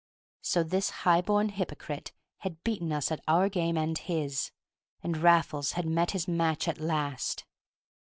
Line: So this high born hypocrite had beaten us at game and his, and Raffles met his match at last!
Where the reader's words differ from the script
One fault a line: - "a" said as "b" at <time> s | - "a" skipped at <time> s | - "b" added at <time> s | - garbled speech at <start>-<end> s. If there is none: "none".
- "our" added at 3.3 s
- "had" added at 5.7 s